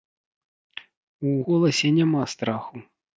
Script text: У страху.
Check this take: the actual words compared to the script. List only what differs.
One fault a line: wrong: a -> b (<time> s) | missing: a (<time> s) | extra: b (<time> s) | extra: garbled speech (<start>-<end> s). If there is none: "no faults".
extra: голасе няма (1.4 s)